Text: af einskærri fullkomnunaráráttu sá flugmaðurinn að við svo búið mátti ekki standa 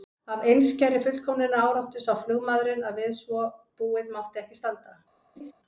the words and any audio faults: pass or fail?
fail